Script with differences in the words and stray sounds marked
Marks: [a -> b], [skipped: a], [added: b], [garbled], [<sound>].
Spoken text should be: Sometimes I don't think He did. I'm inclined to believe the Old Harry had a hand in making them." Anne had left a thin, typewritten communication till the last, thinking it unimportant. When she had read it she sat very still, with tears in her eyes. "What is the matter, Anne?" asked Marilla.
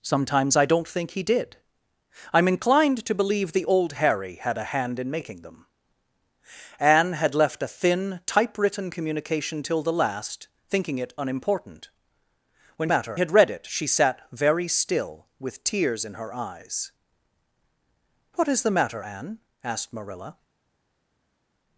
Sometimes I don't think He did. I'm inclined to believe the Old Harry had a hand in making them." Anne had left a thin, typewritten communication till the last, thinking it unimportant. When [she -> matter] had read it she sat very still, with tears in her eyes. "What is the matter, Anne?" asked Marilla.